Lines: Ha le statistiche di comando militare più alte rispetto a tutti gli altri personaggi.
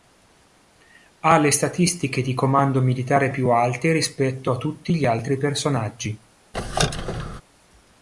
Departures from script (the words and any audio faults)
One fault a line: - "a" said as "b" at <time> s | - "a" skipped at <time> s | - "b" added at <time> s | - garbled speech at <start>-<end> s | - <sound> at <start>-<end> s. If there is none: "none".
- squeak at 6.5-7.4 s